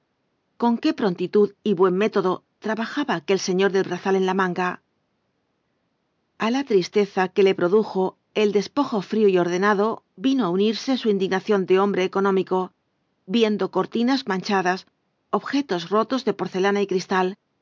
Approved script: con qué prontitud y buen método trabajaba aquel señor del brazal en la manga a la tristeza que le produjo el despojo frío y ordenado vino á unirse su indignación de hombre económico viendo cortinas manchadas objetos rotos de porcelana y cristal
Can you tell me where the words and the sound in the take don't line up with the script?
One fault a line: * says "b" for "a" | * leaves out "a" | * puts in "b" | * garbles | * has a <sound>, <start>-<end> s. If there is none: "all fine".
all fine